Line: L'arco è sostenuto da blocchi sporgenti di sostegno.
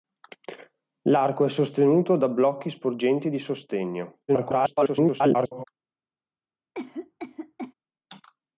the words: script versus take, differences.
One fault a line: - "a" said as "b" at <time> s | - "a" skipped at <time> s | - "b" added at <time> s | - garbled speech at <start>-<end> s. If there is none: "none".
- garbled speech at 4.3-5.6 s